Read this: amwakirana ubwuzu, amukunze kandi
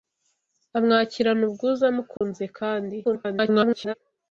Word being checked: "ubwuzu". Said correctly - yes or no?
yes